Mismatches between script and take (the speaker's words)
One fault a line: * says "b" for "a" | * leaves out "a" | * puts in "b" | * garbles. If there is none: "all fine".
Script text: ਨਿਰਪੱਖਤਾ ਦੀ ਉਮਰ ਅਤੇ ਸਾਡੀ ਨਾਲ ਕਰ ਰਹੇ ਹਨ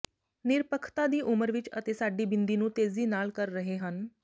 * puts in "ਵਿਚ"
* puts in "ਬਿੰਦੀ ਨੂੰ ਤੇਜ਼ੀ"